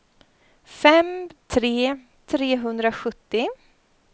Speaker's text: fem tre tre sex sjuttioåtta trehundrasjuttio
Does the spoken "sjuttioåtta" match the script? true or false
false